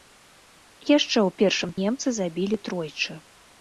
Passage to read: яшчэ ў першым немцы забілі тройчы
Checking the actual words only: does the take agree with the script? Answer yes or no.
yes